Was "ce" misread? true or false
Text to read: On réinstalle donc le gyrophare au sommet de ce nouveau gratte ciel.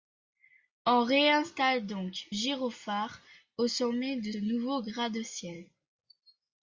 true